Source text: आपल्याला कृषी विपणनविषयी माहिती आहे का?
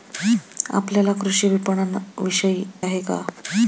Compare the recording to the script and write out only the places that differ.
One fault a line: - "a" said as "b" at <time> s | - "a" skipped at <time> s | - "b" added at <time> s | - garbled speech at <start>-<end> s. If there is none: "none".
- "माहिती" skipped at 2.6 s